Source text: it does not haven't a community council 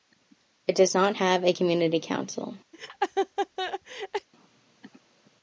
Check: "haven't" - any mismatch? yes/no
yes